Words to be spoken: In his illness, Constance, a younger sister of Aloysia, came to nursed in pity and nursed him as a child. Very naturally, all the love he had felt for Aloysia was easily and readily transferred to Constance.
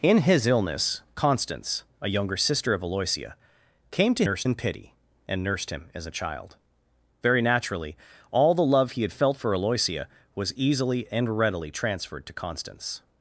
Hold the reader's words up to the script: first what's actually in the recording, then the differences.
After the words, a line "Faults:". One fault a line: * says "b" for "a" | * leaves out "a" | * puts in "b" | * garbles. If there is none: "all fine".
In his illness, Constance, a younger sister of Aloysia, came to nursed in pity and nursed him as a child. Very naturally, all the love he had felt for Aloysia was easily and readily transferred to Constance.
Faults:
all fine